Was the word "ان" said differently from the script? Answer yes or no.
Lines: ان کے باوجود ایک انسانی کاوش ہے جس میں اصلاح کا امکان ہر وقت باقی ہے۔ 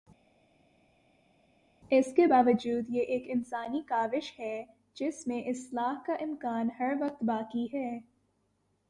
yes